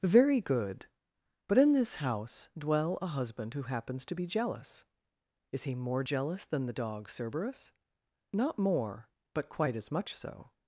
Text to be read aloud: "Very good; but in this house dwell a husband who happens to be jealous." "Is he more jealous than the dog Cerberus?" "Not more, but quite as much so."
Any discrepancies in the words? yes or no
no